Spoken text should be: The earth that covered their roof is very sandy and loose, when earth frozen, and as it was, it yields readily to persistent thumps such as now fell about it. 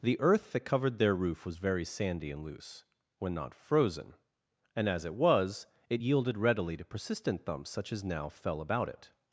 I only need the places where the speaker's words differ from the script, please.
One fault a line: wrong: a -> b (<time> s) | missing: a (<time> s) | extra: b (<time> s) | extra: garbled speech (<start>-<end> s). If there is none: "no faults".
wrong: is -> was (1.4 s)
wrong: earth -> not (3.4 s)
wrong: yields -> yielded (6.0 s)